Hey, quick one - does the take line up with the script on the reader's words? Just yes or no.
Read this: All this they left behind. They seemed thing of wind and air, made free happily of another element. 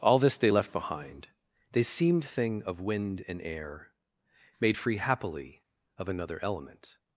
yes